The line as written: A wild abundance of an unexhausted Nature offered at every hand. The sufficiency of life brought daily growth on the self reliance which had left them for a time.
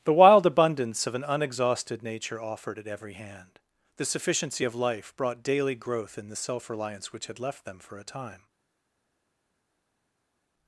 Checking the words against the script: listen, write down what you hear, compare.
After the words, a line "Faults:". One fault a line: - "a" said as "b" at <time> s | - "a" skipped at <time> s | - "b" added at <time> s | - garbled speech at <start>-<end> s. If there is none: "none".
The wild abundance of an unexhausted Nature offered at every hand. The sufficiency of life brought daily growth in the self reliance which had left them for a time.
Faults:
- "A" said as "The" at 0.0 s
- "on" said as "in" at 6.2 s